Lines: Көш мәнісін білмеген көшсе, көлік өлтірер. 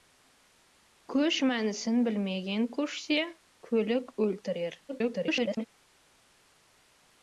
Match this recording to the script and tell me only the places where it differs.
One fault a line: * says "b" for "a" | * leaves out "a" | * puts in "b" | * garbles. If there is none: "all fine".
* garbles